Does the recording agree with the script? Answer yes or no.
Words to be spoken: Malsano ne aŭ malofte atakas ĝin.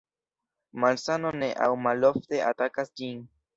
yes